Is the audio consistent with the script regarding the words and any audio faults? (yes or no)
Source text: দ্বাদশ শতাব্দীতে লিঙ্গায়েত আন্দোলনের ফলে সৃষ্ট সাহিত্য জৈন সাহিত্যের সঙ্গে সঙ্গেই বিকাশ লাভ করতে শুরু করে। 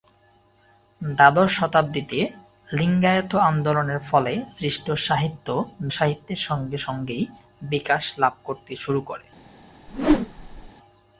no